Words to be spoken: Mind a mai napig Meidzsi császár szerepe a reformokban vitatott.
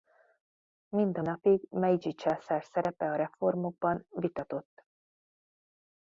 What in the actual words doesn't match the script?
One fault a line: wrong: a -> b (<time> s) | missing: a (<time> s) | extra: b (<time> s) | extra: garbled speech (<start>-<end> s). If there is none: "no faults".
missing: mai (1.2 s)